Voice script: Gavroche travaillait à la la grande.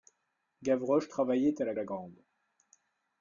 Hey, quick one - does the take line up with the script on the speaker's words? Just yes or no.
yes